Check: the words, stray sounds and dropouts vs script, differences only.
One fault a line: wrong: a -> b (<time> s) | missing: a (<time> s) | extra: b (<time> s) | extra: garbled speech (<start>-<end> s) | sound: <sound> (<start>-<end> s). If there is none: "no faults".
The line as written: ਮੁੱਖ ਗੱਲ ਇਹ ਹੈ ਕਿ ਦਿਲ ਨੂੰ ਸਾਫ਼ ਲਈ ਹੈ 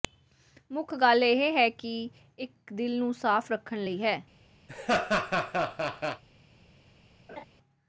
extra: ਇੱਕ (2.4 s)
extra: ਰੱਖਣ (3.5 s)
sound: laugh (4.7-6.2 s)
sound: laugh (7.3-7.4 s)